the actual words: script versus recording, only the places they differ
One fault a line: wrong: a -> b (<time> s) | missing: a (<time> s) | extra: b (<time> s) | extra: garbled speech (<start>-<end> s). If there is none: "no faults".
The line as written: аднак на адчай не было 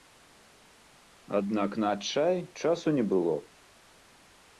extra: часу (2.6 s)